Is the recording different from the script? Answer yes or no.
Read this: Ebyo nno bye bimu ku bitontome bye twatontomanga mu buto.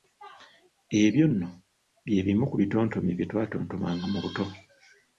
no